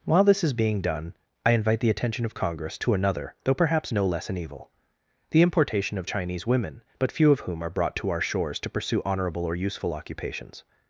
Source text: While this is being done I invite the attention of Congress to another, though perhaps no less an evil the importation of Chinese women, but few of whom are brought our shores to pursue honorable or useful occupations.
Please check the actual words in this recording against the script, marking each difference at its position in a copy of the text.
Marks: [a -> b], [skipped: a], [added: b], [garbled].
While this is being done I invite the attention of Congress to another, though perhaps no less an evil the importation of Chinese women, but few of whom are brought [added: to] our shores to pursue honorable or useful occupations.